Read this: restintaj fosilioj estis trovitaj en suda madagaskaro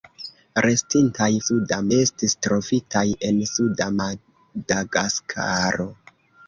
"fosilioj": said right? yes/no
no